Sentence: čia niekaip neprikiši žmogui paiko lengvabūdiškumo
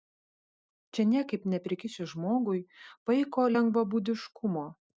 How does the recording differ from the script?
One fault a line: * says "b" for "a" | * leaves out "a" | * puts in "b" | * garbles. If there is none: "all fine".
all fine